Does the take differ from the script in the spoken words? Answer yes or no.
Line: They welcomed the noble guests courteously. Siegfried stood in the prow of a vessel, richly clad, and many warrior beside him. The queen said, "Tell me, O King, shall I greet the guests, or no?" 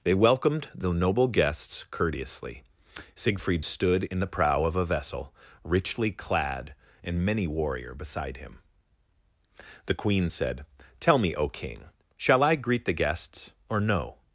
no